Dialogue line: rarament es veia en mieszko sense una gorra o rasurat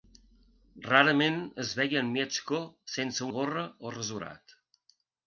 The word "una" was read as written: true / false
false